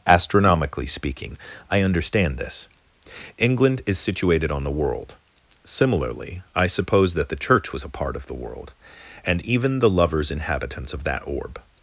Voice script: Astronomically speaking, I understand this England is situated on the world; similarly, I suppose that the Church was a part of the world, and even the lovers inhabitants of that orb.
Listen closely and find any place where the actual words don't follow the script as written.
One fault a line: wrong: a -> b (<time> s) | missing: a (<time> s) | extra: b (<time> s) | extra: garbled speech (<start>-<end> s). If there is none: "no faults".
no faults